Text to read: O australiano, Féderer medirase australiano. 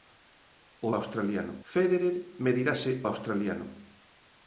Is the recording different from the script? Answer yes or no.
no